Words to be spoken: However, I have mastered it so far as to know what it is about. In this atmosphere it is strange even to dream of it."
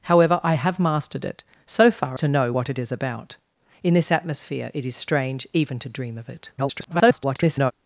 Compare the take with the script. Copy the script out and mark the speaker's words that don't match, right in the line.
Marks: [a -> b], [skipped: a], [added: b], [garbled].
However, I have mastered it so far [skipped: as] to know what it is about. In this atmosphere it is strange even to dream of it." [garbled]